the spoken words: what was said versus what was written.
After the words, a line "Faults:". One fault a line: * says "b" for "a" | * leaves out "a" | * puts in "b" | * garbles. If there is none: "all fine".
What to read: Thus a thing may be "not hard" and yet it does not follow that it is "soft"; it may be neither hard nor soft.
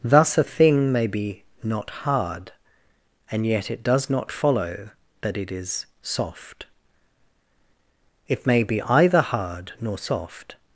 Thus a thing may be "not hard" and yet it does not follow that it is "soft"; it may be either hard nor soft.
Faults:
* says "either" for "neither"